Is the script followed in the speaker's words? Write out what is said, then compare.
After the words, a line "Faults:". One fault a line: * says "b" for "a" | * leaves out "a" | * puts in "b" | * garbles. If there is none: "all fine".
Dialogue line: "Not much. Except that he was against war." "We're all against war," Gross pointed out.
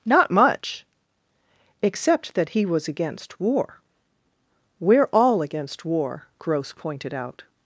"Not much. Except that he was against war." "We're all against war," Gross pointed out.
Faults:
all fine